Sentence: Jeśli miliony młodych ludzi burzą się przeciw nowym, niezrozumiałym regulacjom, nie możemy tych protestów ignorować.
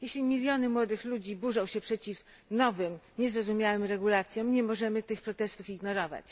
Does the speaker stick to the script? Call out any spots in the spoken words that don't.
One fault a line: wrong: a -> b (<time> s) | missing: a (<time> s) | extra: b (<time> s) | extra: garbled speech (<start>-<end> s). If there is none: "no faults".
no faults